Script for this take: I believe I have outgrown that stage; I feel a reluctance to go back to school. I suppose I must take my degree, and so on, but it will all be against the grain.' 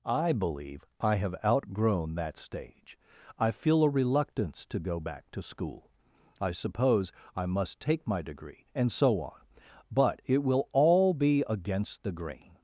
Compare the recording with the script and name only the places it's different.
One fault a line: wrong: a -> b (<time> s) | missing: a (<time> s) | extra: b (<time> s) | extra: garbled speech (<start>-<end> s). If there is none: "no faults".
no faults